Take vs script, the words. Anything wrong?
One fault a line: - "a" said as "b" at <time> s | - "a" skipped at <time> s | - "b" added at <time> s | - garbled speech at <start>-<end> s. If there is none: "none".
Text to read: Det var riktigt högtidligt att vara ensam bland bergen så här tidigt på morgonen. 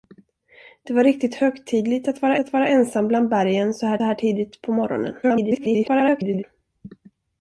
- "att vara" added at 2.4 s
- "här" added at 4.0 s
- garbled speech at 5.2-6.4 s